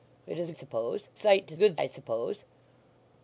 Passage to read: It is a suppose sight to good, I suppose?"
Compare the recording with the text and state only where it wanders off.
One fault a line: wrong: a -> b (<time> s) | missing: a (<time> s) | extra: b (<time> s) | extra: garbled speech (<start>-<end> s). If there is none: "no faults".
no faults